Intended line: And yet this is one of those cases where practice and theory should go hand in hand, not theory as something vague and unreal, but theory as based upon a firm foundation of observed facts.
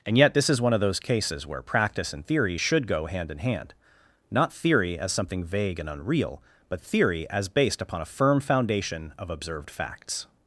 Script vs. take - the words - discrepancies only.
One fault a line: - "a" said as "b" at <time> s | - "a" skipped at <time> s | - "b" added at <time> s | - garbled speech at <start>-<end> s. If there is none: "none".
none